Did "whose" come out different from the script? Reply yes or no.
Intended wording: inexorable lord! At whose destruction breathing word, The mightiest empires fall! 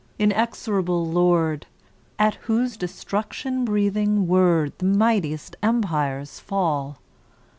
no